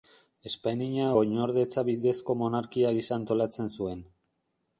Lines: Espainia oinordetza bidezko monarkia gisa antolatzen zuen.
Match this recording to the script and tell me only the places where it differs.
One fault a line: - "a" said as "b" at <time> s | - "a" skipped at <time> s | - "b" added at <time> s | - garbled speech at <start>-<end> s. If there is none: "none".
none